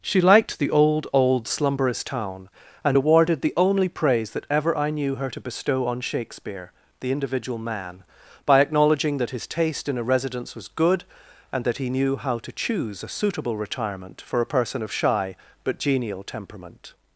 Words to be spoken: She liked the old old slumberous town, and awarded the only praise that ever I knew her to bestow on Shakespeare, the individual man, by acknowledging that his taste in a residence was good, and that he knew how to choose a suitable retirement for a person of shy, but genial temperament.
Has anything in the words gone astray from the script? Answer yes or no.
no